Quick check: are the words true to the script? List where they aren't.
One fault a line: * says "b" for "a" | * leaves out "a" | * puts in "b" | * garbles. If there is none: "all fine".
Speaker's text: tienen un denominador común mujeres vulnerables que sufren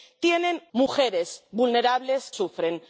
* leaves out "un denominador común"
* leaves out "que"